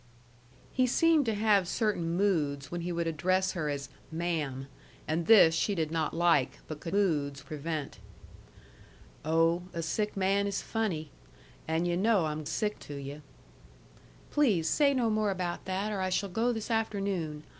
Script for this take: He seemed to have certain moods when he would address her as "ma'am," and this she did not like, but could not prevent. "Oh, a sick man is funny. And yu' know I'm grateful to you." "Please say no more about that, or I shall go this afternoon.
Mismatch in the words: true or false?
true